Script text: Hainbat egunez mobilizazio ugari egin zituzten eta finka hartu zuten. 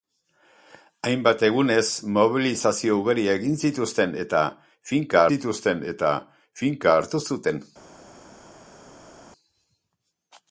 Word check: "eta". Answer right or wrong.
right